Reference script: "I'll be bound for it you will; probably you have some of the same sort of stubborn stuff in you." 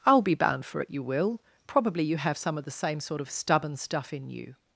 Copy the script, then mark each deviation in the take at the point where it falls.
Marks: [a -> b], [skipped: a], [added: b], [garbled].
"I'll be bound for it you will; probably you have some of the same sort of stubborn stuff in you."